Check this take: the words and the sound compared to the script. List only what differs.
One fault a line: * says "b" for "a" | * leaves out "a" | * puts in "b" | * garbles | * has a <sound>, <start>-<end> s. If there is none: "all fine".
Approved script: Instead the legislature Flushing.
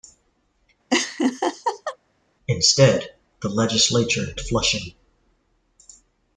* has a laugh, 0.9-2.0 s